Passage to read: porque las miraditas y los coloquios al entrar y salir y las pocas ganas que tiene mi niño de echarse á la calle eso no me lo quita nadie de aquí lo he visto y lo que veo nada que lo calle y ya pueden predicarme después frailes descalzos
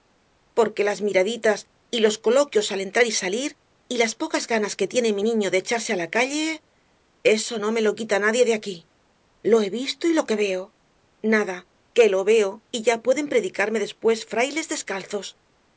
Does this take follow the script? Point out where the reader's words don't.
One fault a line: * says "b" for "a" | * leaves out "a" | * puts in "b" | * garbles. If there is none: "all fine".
* says "veo" for "calle"